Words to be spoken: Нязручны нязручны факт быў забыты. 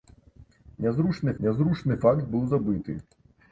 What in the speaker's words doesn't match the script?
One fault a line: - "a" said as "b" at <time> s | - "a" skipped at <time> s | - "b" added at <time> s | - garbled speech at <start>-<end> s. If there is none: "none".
none